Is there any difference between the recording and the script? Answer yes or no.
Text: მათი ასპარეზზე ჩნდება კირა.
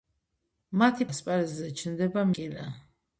no